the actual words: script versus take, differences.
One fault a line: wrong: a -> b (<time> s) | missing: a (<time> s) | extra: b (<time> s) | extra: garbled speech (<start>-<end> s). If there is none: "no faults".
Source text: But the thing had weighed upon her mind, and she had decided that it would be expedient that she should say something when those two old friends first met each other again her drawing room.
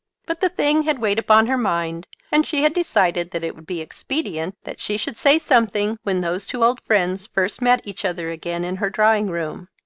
extra: in (8.6 s)